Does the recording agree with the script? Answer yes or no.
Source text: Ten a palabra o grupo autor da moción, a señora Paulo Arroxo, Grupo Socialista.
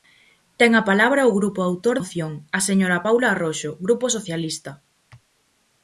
no